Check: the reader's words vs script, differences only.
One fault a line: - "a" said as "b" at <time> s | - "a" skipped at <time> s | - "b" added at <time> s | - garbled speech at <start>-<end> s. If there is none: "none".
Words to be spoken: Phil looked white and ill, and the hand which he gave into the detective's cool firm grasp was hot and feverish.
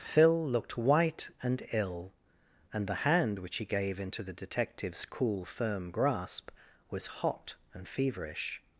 none